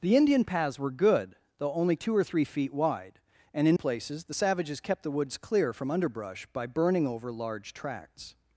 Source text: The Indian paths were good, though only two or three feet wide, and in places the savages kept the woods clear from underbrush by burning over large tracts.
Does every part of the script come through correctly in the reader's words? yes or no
yes